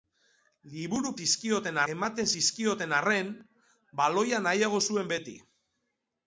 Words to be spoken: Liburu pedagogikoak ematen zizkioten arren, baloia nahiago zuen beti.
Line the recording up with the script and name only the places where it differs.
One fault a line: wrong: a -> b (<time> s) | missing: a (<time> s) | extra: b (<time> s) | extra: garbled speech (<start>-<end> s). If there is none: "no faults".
wrong: pedagogikoak -> zizkioten (1.2 s)